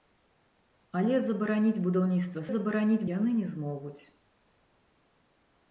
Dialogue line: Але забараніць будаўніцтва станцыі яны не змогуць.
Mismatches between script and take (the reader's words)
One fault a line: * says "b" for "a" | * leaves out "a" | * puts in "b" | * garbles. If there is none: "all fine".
* says "забараніць" for "станцыі"